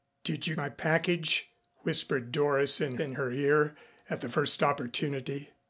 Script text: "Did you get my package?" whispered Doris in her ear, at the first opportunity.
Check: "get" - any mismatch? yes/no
yes